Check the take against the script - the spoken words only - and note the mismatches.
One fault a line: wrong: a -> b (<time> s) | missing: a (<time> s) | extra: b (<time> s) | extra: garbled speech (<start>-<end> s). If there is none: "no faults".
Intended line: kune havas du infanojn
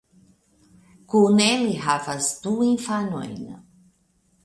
extra: ili (1.6 s)